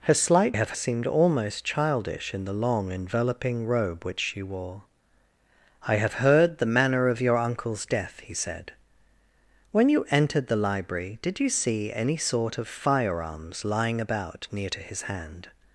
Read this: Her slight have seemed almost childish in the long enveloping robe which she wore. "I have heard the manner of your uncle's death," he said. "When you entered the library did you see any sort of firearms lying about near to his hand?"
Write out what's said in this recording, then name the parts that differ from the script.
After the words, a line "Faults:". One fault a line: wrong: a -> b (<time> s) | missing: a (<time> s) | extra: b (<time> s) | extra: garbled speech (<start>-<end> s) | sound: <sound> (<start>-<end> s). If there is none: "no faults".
Her slight have seemed almost childish in the long enveloping robe which she wore. "I have heard the manner of your uncle's death," he said. "When you entered the library did you see any sort of firearms lying about near to his hand?"
Faults:
no faults